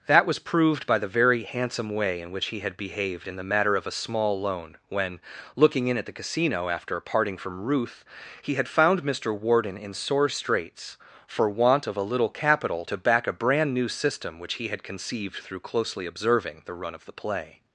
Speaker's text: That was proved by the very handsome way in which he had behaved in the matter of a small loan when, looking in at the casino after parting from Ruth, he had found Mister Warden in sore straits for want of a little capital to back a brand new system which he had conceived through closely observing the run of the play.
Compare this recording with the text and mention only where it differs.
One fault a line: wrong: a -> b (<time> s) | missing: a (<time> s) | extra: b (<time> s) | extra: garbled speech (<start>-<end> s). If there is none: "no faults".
no faults